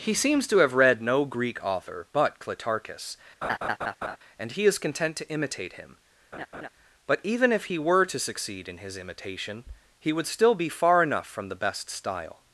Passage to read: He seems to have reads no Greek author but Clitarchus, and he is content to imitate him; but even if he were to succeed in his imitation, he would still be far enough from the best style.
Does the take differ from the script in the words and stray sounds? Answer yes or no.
yes